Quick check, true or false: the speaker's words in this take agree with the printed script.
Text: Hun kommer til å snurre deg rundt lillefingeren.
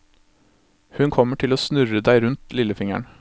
true